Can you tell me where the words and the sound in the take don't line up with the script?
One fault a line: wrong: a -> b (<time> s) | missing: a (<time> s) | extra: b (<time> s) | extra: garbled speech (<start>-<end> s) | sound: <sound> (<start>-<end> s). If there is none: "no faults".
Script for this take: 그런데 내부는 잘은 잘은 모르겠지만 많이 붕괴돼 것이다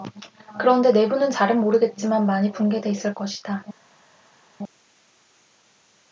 missing: 잘은 (1.6 s)
extra: 있을 (2.9 s)